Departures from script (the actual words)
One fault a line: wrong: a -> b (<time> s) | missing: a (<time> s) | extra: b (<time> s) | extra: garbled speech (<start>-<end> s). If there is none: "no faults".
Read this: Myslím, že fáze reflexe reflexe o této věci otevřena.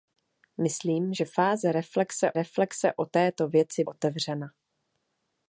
no faults